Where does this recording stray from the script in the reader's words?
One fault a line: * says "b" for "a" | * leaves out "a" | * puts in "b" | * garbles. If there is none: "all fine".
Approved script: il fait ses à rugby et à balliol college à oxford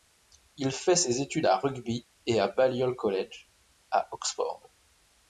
* puts in "études"